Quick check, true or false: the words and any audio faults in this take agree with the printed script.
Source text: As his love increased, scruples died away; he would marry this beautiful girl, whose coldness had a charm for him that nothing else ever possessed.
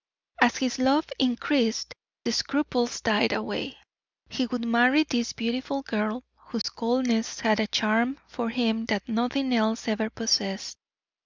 false